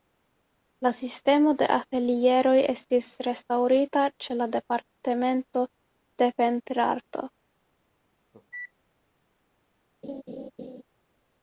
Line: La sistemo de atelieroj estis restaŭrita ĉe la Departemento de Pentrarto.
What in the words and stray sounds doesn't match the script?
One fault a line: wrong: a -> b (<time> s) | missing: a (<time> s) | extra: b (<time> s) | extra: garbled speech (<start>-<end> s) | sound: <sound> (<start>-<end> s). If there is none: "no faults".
sound: cough (8.3-8.7 s)
sound: laugh (10.0-10.8 s)